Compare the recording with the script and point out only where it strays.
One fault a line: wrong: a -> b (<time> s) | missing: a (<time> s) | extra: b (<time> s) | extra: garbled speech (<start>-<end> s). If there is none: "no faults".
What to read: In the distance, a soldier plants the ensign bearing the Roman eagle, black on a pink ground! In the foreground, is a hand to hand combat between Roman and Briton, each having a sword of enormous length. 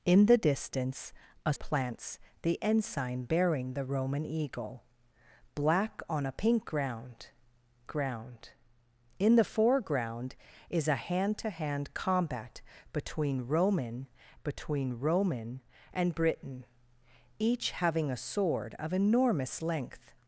missing: soldier (1.5 s)
extra: ground (7.9 s)
extra: between Roman (14.4 s)